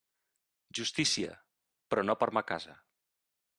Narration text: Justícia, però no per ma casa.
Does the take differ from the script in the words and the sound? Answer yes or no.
no